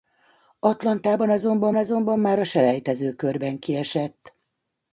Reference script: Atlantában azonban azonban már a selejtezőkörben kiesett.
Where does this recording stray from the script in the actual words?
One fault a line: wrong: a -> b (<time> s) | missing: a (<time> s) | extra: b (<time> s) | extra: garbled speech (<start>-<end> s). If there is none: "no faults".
no faults